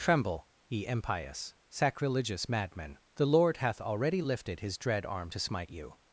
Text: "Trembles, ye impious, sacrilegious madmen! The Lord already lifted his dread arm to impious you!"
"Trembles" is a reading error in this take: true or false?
true